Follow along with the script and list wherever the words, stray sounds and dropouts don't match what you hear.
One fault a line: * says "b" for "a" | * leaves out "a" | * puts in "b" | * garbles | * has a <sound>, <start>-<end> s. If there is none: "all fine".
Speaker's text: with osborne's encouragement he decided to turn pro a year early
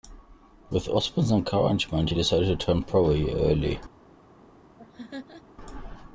* has a laugh, 4.8-5.4 s